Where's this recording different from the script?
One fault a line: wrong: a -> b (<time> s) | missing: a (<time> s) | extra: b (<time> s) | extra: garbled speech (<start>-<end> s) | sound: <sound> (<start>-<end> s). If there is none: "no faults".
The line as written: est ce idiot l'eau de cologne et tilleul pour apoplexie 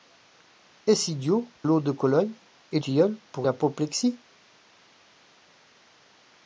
no faults